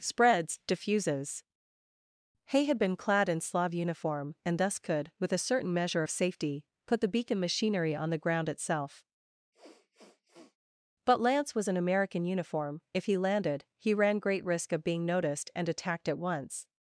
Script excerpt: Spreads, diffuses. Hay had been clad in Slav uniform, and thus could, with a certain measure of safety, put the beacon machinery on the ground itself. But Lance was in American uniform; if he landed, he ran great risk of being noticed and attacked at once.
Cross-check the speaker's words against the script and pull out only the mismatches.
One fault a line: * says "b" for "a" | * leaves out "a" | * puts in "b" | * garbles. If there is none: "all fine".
all fine